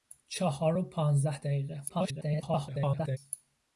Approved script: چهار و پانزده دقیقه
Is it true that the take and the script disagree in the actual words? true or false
true